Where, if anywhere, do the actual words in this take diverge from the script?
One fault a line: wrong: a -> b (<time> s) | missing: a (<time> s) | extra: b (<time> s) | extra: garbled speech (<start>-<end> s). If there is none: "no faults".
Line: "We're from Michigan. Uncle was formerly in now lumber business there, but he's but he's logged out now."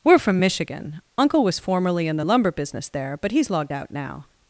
wrong: now -> the (2.1 s)
missing: but he's (3.5 s)